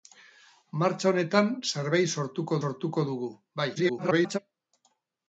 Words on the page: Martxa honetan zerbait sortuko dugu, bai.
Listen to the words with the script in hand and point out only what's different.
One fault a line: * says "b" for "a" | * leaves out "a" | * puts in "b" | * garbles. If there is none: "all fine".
* puts in "sortuko"
* garbles